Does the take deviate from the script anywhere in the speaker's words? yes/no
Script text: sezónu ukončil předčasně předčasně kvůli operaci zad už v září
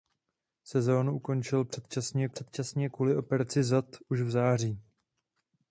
no